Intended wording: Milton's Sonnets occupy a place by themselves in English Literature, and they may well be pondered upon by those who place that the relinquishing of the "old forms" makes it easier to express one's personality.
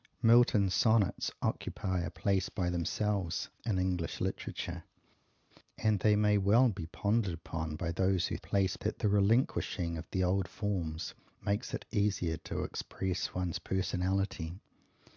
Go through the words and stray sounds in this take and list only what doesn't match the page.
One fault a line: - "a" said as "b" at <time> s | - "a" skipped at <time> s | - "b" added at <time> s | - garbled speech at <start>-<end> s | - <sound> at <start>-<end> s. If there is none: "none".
none